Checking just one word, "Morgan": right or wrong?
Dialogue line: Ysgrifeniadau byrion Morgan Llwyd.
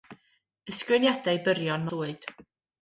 wrong